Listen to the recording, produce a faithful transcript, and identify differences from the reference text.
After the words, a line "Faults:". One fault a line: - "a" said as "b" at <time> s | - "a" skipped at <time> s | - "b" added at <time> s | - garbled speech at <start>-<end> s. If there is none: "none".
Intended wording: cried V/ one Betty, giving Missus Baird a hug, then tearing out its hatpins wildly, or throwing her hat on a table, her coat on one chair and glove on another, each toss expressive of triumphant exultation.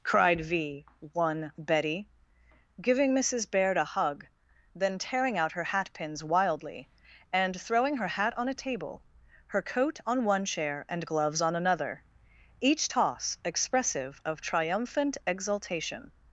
cried V/ one Betty, giving Missus Baird a hug, then tearing out her hatpins wildly, and throwing her hat on a table, her coat on one chair and gloves on another, each toss expressive of triumphant exultation.
Faults:
- "its" said as "her" at 5.5 s
- "or" said as "and" at 7.3 s
- "glove" said as "gloves" at 11.0 s